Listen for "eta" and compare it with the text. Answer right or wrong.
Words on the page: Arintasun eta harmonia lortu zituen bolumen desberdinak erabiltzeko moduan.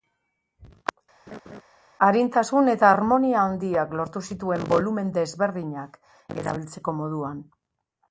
right